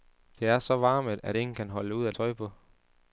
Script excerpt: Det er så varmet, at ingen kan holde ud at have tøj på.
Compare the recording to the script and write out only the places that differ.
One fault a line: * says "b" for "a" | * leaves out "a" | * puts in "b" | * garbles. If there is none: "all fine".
* leaves out "have"